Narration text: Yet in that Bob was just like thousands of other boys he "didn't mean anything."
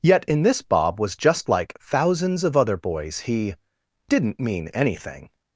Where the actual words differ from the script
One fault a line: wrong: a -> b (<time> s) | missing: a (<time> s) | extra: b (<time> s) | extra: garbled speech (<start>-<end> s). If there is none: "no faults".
wrong: that -> this (0.4 s)